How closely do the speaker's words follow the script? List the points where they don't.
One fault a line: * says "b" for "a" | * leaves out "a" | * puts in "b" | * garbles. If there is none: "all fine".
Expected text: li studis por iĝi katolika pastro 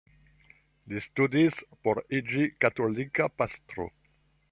all fine